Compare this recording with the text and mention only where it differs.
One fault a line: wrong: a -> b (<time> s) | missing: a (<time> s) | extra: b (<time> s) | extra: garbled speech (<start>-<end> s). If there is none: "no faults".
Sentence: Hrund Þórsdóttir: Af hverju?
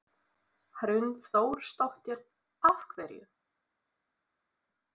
no faults